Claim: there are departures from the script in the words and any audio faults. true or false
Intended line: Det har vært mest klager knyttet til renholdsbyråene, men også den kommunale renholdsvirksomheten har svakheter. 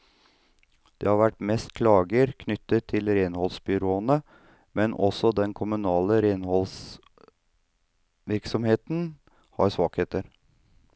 false